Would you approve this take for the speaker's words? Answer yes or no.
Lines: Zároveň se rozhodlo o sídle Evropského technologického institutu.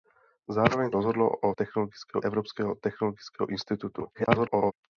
no